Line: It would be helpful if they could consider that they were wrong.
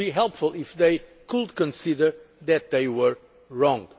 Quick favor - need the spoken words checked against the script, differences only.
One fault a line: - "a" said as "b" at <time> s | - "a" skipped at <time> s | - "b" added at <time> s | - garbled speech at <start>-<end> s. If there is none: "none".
none